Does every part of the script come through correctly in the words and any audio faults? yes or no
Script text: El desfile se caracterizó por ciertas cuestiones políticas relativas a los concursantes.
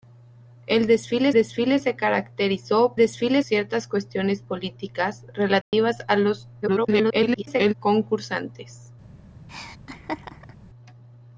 no